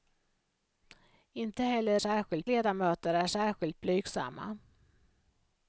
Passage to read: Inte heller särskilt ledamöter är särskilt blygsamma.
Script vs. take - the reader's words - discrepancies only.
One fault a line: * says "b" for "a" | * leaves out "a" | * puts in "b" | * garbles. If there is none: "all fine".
all fine